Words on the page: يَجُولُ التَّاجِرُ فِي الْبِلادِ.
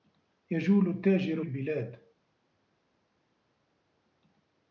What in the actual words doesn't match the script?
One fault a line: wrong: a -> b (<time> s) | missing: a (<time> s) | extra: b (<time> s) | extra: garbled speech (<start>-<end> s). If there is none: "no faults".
missing: فِي (1.4 s)